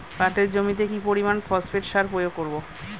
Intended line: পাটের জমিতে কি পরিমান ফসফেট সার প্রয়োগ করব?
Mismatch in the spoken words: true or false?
false